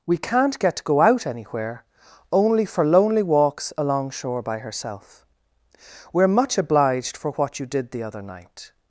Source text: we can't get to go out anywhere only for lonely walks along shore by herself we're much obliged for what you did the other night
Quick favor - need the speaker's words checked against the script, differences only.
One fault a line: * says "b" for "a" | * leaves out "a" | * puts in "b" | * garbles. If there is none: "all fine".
all fine